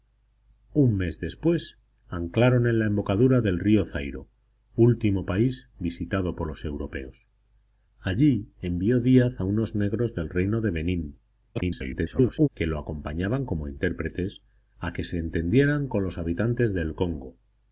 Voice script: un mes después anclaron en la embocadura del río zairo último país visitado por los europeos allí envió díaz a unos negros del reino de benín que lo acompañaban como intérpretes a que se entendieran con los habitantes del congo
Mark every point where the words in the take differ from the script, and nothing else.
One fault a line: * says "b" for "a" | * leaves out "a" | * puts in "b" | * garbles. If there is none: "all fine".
* garbles